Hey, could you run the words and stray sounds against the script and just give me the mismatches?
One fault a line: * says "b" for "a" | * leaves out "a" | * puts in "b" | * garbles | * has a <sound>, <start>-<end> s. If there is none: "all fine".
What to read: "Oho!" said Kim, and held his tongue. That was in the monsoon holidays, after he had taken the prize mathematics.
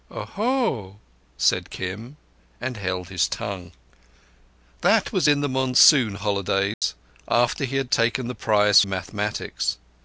* has a dropout, 6.7-6.8 s